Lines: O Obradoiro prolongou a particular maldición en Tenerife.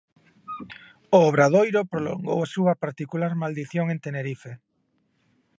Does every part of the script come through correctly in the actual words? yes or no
no